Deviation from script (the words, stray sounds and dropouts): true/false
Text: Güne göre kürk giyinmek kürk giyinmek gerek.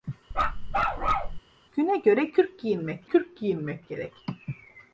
true